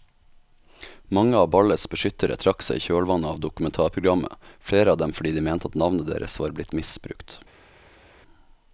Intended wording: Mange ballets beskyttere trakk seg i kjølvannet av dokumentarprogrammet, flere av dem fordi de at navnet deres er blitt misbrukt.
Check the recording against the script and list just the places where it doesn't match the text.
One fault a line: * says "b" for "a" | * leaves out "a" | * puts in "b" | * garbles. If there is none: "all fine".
* puts in "av"
* puts in "mente"
* says "var" for "er"